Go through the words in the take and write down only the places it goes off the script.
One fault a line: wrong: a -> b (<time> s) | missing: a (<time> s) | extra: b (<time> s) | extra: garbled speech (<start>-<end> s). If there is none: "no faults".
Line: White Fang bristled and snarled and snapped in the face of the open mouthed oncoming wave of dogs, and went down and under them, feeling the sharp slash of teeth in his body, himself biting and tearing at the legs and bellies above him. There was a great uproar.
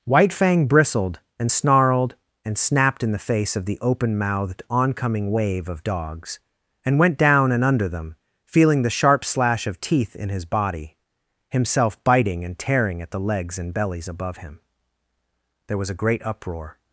no faults